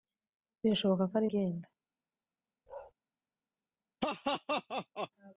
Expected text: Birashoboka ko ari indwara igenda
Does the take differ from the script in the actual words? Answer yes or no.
yes